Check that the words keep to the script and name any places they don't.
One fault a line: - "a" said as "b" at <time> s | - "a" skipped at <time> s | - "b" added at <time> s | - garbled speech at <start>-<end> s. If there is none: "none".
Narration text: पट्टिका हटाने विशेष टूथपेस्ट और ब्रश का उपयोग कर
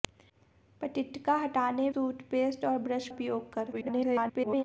- "विशेष" skipped at 1.9 s
- "का" skipped at 3.1 s
- garbled speech at 3.7-4.6 s